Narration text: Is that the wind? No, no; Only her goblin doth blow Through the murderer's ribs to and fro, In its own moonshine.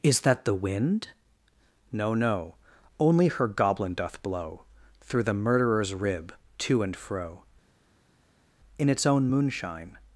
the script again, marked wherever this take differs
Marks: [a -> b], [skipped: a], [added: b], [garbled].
Is that the wind? No, no; Only her goblin doth blow Through the murderer's [ribs -> rib] to and fro, In its own moonshine.